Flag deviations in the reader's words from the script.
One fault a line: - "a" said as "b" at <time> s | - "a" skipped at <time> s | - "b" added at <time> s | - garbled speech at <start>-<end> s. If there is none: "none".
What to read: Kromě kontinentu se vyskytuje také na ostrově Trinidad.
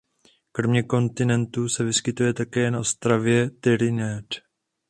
none